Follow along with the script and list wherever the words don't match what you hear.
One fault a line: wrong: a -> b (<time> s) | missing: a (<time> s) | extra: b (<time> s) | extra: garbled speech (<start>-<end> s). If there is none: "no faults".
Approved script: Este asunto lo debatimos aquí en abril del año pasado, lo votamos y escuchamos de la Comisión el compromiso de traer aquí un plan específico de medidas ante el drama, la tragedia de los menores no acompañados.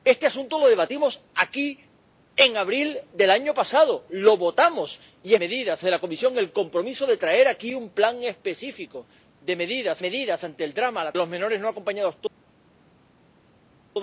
wrong: escuchamos -> medidas (5.4 s)
extra: medidas (10.0 s)
missing: tragedia de (11.1 s)